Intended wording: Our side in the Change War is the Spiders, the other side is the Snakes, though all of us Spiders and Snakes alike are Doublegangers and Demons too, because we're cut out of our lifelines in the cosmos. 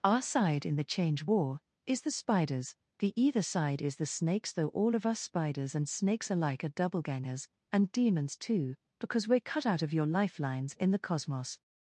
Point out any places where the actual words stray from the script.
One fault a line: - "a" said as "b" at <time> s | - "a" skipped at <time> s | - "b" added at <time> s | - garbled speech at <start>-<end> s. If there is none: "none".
- "other" said as "either" at 3.2 s
- "our" said as "your" at 9.9 s